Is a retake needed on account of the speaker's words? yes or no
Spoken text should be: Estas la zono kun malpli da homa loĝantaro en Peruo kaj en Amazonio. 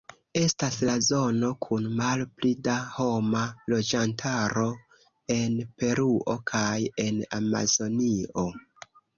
no